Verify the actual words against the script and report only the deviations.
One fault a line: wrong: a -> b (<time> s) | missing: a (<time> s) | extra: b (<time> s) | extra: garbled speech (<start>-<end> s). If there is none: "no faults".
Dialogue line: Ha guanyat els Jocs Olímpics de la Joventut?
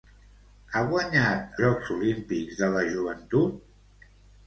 missing: els (1.6 s)